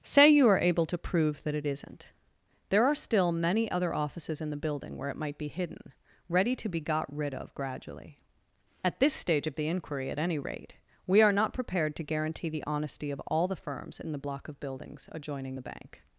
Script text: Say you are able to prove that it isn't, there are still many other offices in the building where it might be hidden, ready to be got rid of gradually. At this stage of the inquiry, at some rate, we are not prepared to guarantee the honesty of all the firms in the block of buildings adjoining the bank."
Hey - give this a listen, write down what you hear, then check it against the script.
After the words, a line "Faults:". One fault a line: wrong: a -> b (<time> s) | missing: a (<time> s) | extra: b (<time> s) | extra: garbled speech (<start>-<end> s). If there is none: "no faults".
Say you are able to prove that it isn't, there are still many other offices in the building where it might be hidden, ready to be got rid of gradually. At this stage of the inquiry, at any rate, we are not prepared to guarantee the honesty of all the firms in the block of buildings adjoining the bank."
Faults:
wrong: some -> any (10.2 s)